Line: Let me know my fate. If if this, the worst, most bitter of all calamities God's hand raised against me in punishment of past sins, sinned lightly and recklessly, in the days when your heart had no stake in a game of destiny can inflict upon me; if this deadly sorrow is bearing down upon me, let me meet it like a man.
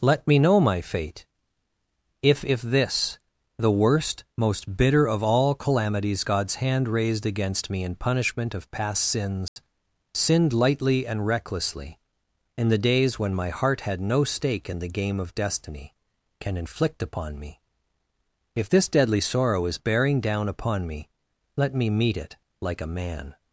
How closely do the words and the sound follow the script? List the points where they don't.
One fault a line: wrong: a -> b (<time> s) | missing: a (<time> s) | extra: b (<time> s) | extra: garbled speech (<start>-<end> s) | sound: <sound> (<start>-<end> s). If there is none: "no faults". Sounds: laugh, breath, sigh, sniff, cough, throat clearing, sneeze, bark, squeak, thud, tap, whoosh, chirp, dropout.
sound: dropout (9.5-9.6 s)
wrong: your -> my (13.3 s)
wrong: a -> the (14.8 s)